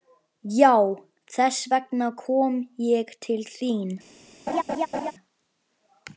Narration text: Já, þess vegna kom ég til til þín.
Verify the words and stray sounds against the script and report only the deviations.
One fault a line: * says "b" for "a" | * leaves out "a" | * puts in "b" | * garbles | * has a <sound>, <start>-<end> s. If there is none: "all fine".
* leaves out "til"
* has a laugh, 4.5-5.1 s